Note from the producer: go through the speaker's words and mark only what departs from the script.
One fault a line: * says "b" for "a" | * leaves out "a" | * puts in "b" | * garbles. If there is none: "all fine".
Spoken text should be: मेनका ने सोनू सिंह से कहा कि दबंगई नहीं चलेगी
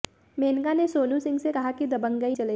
* leaves out "नहीं"